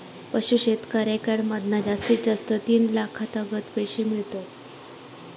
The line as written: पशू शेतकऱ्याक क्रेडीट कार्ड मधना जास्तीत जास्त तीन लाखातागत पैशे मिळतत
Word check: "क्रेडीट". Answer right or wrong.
wrong